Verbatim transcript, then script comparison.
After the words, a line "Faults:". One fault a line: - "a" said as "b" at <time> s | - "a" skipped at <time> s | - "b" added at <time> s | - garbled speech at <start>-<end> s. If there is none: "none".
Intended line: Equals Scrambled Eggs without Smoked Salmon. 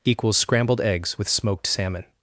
Equals Scrambled Eggs with Smoked Salmon.
Faults:
- "without" said as "with" at 1.2 s